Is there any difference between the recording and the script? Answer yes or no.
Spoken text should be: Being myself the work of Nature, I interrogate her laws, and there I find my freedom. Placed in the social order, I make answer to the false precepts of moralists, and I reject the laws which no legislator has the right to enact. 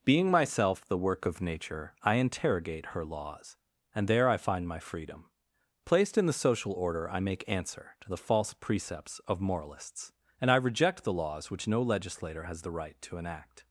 no